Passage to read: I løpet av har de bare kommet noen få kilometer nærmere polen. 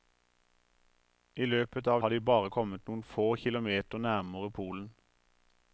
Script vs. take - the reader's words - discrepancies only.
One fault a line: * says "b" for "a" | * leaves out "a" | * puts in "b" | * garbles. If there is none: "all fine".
all fine